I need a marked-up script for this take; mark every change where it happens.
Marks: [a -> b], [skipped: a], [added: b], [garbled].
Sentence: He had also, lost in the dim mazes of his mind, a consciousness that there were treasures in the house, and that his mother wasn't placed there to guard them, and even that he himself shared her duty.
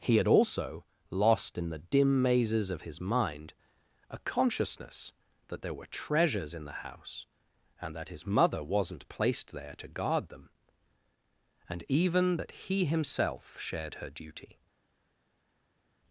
He had also, lost in the dim mazes of his mind, a consciousness that there were treasures in the house, and that his mother wasn't placed there to guard them, and even that he himself shared her duty.